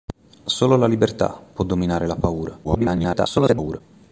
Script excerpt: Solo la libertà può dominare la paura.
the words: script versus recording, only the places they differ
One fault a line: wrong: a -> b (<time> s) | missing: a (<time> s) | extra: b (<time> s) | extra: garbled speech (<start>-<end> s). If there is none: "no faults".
extra: garbled speech (2.6-3.8 s)